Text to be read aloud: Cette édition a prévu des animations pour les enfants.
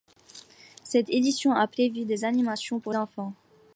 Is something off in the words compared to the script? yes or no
yes